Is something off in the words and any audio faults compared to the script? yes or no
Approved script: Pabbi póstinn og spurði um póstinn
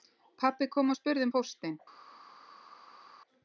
yes